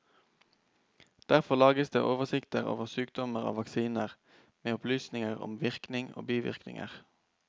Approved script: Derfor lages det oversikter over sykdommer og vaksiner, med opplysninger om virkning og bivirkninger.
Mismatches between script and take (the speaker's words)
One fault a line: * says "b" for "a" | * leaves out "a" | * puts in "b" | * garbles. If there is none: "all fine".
all fine